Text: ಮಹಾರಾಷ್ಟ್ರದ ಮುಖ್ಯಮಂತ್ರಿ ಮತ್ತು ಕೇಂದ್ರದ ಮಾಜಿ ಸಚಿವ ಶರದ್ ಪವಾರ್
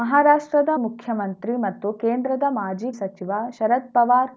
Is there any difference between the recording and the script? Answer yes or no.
no